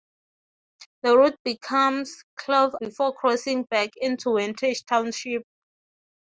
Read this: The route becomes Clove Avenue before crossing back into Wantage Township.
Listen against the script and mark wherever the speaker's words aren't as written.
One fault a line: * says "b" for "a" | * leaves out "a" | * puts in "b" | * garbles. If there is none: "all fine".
* leaves out "Avenue"